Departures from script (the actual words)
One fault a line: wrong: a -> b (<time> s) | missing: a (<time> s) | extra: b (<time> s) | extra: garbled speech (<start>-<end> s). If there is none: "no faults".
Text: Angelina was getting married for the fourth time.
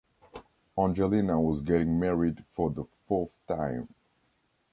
no faults